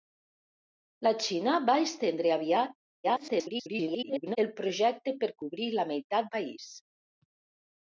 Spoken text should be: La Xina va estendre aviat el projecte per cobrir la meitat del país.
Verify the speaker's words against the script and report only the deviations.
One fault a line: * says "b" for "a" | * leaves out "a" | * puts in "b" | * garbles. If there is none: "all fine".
* garbles
* leaves out "del"